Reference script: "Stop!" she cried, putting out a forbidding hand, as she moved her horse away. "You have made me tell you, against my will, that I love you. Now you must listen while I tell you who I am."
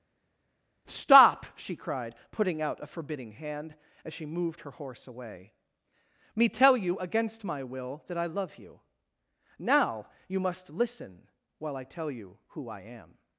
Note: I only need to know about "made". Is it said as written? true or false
false